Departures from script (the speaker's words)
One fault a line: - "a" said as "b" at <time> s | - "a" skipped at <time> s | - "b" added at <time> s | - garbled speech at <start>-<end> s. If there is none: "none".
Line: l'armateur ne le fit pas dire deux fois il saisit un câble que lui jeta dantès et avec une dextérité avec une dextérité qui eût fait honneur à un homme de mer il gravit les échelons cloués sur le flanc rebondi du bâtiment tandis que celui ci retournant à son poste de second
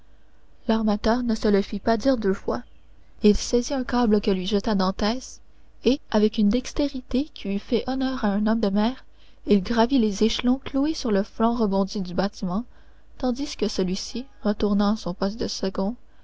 - "se" added at 1.4 s
- "avec une dextérité" skipped at 7.2 s